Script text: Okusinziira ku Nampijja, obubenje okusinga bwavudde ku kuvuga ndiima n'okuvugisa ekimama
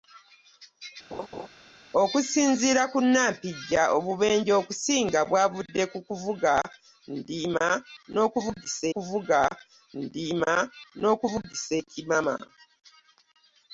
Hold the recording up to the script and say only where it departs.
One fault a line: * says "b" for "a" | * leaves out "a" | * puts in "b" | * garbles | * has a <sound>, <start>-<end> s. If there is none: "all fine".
* has a laugh, 1.1-1.5 s
* puts in "kuvuga ndiima n'okuvugisa"